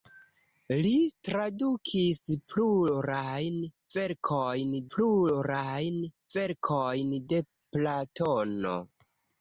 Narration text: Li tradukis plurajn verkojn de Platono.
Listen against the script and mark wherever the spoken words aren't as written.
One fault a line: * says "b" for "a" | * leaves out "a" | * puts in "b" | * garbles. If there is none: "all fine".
* puts in "plurajn verkojn"